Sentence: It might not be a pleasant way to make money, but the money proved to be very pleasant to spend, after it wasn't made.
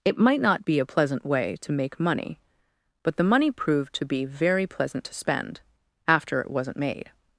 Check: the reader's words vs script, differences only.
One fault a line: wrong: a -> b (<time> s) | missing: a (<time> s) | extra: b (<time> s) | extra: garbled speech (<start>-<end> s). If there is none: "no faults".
no faults